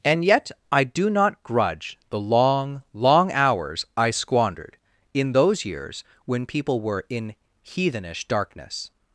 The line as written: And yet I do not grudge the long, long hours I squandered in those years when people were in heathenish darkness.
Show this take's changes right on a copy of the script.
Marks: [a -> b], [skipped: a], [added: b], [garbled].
And yet I do not grudge the long, long hours I squandered in those years when people were in heathenish darkness.